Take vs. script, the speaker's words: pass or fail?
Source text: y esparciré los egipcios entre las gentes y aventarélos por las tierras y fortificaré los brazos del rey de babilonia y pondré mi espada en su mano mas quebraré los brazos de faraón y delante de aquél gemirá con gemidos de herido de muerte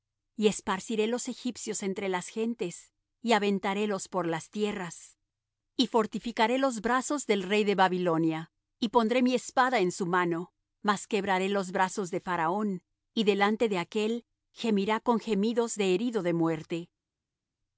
pass